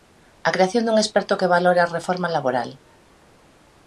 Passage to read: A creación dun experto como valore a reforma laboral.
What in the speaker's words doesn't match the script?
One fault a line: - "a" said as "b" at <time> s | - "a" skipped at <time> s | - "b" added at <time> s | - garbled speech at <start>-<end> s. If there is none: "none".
- "como" said as "que" at 1.4 s